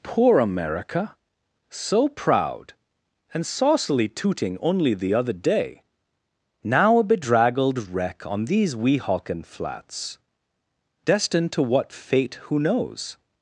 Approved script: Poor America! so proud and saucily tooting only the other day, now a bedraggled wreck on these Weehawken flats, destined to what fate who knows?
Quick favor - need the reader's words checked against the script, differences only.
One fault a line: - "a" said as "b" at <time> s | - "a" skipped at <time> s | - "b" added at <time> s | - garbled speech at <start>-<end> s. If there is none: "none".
none